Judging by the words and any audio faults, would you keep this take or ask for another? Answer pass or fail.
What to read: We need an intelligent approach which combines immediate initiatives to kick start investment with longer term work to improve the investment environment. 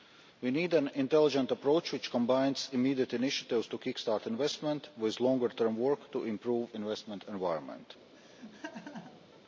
fail